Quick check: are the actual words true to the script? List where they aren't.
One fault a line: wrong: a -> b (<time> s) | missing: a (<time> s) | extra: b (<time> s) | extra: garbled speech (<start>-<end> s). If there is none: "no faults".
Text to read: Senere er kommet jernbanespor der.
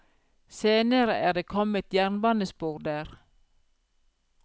extra: det (1.3 s)